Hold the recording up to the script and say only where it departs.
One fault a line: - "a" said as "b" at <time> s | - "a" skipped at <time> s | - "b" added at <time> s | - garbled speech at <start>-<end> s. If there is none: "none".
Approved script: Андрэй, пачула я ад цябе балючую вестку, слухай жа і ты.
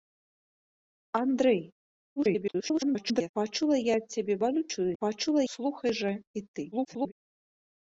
- garbled speech at 2.2-3.3 s
- "вестку" said as "пачула" at 5.0 s
- garbled speech at 6.7-7.1 s